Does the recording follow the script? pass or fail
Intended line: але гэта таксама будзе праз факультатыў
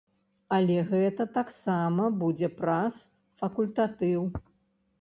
pass